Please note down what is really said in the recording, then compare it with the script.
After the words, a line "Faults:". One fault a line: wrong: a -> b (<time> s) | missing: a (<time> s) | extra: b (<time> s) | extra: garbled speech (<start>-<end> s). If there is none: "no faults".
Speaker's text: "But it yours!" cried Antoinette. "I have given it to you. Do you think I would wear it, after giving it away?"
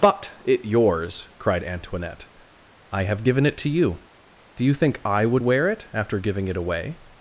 "But it yours!" cried Antoinette. "I have given it to you. Do you think I would wear it, after giving it away?"
Faults:
no faults